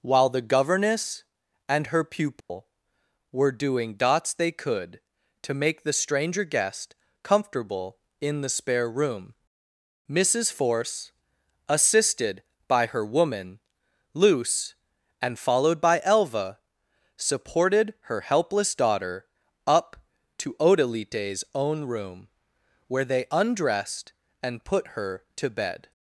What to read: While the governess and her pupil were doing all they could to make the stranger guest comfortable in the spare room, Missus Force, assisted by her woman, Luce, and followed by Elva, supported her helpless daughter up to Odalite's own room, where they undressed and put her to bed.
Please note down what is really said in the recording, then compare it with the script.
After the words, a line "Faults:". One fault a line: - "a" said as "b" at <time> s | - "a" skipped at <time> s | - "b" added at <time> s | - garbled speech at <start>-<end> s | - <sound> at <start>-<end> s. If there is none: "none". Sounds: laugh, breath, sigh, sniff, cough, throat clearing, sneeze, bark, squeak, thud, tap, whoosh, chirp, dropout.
While the governess and her pupil were doing dots they could to make the stranger guest comfortable in the spare room, Missus Force, assisted by her woman, Luce, and followed by Elva, supported her helpless daughter up to Odalite's own room, where they undressed and put her to bed.
Faults:
- dropout at 2.4-2.5 s
- "all" said as "dots" at 3.9 s